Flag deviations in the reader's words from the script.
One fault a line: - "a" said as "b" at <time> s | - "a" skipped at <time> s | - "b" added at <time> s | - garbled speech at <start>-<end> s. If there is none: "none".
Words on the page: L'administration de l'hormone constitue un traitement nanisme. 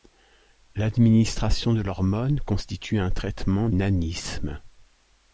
none